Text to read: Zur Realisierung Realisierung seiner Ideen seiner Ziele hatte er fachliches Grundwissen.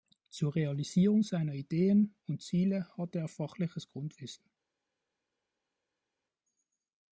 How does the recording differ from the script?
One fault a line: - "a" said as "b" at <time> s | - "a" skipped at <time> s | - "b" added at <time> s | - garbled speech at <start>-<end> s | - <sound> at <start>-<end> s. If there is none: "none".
- "Realisierung" skipped at 1.2 s
- "seiner" said as "und" at 2.2 s